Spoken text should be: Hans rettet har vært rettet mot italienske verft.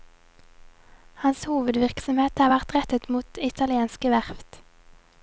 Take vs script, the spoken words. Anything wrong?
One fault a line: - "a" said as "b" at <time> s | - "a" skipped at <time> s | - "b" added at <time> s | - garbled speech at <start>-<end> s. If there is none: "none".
- "rettet" said as "hovedvirksomhet" at 1.5 s